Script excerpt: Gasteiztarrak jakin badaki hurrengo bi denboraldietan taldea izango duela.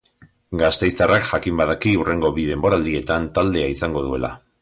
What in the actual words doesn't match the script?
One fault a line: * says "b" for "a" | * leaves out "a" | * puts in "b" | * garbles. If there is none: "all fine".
all fine